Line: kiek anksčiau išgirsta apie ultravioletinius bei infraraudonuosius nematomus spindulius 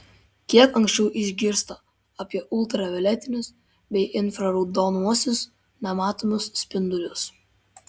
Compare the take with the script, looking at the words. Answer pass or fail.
pass